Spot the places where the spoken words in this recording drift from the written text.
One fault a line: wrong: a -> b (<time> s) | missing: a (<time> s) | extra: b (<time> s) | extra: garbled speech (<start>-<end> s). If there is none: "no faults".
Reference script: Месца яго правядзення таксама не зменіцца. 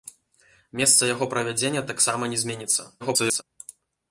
extra: garbled speech (3.0-3.4 s)